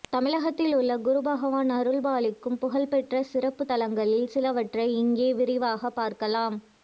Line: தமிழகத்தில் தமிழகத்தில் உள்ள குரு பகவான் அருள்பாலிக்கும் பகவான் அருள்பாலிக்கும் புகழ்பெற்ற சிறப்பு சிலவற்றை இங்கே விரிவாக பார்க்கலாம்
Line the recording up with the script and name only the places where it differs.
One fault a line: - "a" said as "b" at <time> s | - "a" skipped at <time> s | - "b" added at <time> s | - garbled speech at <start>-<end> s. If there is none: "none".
- "தமிழகத்தில்" skipped at 0.7 s
- "பகவான் அருள்பாலிக்கும்" skipped at 2.6 s
- "தலங்களில்" added at 3.6 s